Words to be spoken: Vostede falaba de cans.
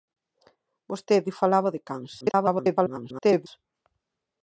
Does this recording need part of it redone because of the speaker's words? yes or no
yes